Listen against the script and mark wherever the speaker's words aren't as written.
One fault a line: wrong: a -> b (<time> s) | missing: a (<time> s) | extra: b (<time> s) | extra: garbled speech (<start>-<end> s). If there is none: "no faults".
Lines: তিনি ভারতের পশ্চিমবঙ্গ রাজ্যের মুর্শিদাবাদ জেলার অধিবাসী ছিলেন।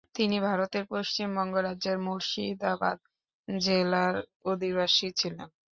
no faults